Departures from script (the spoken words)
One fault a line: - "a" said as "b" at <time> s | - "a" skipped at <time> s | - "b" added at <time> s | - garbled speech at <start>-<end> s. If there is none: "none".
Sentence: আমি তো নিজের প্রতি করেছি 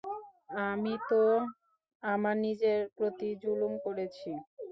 - "আমার" added at 2.0 s
- "জুলুম" added at 3.4 s